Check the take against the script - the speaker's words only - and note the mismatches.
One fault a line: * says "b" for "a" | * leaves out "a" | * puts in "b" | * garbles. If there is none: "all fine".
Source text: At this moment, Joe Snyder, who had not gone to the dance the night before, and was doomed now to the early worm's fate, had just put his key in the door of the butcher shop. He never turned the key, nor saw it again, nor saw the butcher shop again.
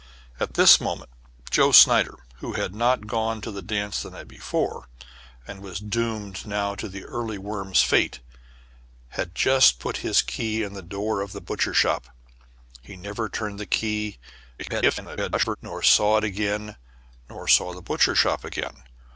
* garbles